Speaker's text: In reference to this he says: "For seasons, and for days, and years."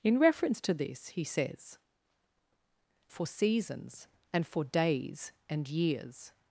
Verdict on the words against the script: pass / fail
pass